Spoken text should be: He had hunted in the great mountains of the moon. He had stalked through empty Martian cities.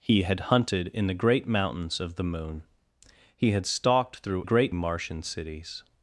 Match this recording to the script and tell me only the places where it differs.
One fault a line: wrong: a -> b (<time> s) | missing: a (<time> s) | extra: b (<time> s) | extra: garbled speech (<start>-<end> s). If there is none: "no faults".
wrong: empty -> great (4.4 s)